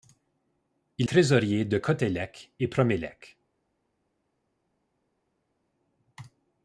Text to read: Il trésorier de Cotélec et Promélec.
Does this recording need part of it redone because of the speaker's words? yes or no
no